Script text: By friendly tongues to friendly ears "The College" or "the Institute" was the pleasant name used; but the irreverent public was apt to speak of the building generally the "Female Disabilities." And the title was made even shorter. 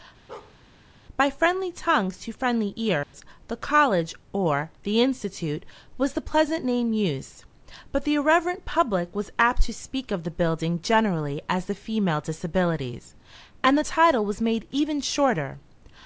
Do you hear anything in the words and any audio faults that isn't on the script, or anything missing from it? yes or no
yes